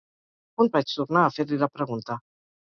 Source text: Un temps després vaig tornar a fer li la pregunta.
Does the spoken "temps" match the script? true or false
false